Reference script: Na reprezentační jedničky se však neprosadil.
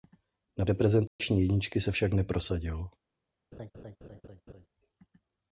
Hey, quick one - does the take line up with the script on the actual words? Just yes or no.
yes